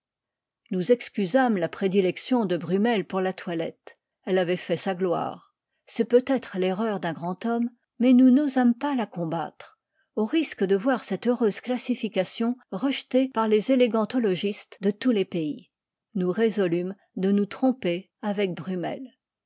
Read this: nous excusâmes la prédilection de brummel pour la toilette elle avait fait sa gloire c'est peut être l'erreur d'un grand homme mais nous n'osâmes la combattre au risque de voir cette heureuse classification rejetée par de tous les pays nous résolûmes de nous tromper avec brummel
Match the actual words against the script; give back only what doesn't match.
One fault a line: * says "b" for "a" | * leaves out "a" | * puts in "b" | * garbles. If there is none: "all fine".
* puts in "pas"
* puts in "les élégantologistes"